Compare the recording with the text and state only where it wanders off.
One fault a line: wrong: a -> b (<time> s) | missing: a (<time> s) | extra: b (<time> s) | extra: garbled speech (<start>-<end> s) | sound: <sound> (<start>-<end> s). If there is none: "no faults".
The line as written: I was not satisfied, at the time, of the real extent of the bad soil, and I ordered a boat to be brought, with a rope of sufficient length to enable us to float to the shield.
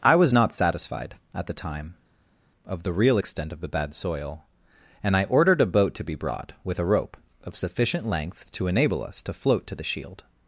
no faults